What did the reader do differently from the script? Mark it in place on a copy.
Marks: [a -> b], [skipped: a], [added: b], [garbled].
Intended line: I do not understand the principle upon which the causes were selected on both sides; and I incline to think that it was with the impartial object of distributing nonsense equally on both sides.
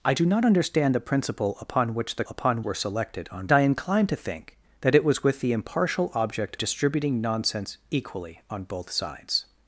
I do not understand the principle upon which the [causes -> upon] were selected on [skipped: both sides; and] I incline to think that it was with the impartial object [skipped: of] distributing nonsense equally on both sides.